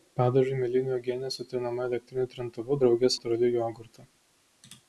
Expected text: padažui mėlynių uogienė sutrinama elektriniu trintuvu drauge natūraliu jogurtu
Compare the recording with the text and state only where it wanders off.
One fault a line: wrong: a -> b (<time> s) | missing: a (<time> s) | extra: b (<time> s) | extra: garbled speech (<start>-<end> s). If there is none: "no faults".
no faults